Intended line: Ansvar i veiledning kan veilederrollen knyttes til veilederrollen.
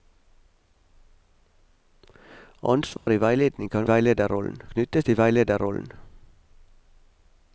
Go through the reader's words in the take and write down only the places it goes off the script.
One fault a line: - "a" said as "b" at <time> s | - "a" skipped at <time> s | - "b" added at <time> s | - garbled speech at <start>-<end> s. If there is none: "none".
none